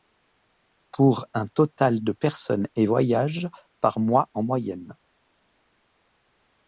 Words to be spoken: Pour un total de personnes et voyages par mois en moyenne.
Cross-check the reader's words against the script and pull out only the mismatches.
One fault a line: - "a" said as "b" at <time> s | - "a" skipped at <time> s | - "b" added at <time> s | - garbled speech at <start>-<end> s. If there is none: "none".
none